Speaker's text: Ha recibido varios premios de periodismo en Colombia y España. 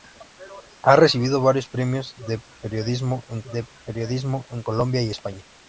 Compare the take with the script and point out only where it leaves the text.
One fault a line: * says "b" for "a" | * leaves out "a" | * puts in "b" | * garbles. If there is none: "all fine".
* puts in "de periodismo en"